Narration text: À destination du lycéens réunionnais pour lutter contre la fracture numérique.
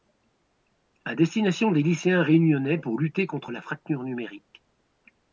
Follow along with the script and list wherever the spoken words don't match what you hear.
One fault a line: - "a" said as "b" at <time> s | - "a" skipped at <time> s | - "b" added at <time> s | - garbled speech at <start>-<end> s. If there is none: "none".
- "du" said as "des" at 1.7 s